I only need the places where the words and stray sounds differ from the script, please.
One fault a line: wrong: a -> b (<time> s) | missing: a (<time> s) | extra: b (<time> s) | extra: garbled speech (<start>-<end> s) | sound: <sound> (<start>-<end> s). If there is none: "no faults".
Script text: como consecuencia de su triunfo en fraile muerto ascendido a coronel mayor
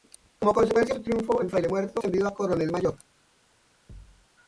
sound: thud (3.9-4.3 s)